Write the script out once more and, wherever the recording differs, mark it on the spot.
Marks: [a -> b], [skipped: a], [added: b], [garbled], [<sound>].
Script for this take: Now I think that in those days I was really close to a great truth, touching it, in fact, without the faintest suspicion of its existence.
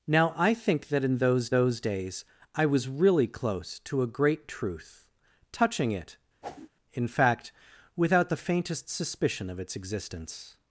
Now I think that in those [added: those] days I was really close to a great truth, touching it, [whoosh] in fact, without the faintest suspicion of its existence.